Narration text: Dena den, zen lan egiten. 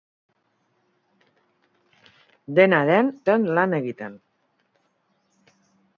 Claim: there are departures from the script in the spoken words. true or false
false